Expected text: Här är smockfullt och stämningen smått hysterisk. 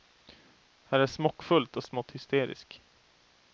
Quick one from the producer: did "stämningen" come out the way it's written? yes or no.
no